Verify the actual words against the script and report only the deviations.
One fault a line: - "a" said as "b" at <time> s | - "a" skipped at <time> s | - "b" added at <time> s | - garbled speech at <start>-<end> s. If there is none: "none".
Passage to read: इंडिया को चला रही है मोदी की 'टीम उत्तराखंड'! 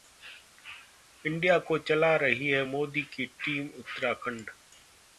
none